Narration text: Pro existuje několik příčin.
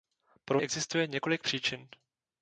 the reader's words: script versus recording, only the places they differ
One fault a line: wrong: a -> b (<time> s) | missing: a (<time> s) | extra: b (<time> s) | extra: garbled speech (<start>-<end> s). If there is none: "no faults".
no faults